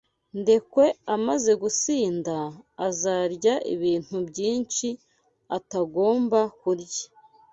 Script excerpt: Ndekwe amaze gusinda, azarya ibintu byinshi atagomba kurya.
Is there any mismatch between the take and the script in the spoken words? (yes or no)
no